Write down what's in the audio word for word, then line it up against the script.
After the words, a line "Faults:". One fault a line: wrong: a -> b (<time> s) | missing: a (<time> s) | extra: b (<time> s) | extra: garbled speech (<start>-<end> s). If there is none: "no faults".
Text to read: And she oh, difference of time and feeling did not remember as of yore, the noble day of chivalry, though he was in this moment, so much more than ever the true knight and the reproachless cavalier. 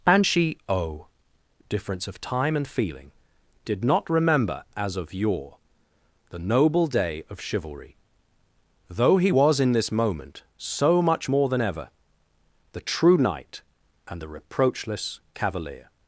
And she oh, difference of time and feeling did not remember as of yore, the noble day of chivalry, though he was in this moment, so much more than ever the true knight and the reproachless cavalier.
Faults:
no faults